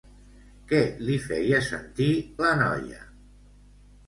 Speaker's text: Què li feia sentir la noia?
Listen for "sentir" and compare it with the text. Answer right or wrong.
right